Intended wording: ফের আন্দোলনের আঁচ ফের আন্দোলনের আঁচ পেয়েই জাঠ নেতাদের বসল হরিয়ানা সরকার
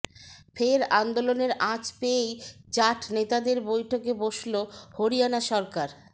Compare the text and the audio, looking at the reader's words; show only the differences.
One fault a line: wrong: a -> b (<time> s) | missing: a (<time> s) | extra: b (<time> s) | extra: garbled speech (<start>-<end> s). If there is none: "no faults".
missing: ফের আন্দোলনের আঁচ (1.8 s)
extra: বৈঠকে (3.7 s)